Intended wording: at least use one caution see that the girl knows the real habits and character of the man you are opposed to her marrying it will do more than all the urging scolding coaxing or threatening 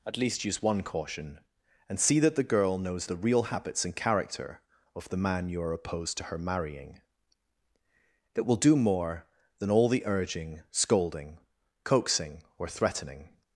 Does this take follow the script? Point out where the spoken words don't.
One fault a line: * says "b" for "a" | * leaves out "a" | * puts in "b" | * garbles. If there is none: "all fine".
* puts in "and"